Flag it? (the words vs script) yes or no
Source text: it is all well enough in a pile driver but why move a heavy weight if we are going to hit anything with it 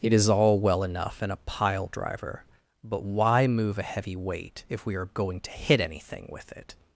no